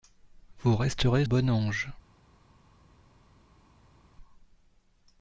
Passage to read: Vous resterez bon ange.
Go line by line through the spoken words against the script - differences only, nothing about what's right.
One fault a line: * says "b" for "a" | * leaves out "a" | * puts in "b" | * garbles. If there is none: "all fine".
all fine